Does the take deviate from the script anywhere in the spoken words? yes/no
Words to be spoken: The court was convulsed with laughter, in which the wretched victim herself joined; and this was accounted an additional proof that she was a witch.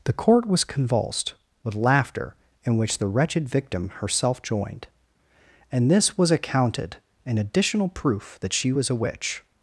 no